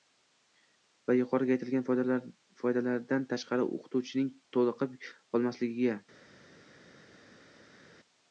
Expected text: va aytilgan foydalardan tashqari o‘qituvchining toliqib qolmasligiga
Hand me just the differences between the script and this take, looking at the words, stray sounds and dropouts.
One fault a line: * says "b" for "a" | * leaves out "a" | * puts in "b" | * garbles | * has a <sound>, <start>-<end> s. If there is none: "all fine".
* puts in "yuqorida"